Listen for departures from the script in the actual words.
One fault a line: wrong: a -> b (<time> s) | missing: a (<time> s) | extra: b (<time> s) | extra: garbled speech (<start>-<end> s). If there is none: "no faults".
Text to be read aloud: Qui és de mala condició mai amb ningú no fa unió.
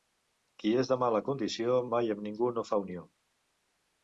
no faults